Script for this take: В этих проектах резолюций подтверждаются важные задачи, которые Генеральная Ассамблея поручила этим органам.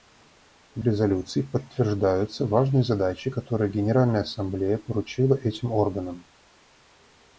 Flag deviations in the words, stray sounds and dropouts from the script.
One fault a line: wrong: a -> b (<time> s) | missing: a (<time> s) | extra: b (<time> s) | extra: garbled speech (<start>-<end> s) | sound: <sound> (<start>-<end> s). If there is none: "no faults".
missing: этих проектах (0.8 s)